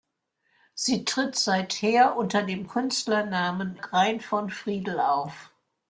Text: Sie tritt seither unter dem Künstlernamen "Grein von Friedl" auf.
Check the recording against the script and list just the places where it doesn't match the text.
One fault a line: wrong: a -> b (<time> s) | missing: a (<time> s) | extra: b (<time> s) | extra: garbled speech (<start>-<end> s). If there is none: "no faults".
no faults